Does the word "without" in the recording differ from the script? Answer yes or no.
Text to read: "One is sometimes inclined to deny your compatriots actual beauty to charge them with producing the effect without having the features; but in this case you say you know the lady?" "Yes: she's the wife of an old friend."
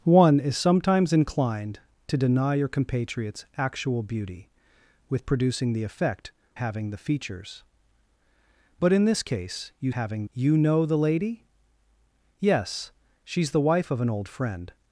yes